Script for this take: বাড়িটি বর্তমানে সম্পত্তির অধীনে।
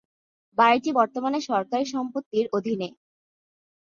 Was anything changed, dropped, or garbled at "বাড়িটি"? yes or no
no